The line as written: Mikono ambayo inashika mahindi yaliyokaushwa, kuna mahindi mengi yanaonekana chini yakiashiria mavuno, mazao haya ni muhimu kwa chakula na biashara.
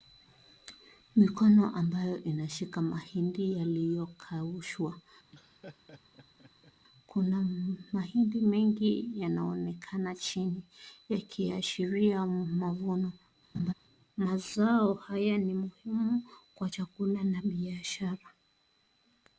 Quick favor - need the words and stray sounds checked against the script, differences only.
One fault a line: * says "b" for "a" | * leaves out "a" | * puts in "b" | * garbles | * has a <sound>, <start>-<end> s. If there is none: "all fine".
* has a laugh, 5.3-6.7 s
* has a laugh, 13.5-13.7 s